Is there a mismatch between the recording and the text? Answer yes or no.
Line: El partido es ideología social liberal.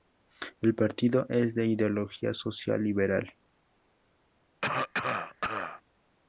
yes